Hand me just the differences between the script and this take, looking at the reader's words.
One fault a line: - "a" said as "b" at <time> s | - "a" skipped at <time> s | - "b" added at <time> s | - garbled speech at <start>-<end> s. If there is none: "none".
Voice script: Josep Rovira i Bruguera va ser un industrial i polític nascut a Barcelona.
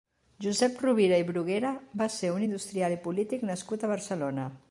none